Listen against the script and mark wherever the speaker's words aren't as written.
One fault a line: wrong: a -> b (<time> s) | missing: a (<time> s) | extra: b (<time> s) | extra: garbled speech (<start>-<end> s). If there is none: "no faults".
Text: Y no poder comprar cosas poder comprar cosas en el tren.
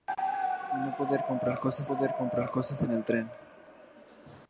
no faults